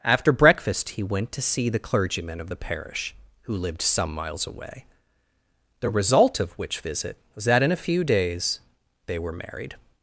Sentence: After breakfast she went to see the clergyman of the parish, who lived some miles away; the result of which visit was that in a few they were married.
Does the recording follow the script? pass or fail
fail